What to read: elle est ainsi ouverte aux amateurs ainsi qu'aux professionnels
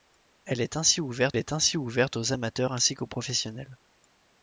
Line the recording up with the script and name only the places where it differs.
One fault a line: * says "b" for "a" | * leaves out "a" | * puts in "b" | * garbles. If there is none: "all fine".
* puts in "est ainsi ouverte"